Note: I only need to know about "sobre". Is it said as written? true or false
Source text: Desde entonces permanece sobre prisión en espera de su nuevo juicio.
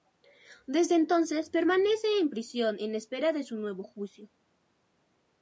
false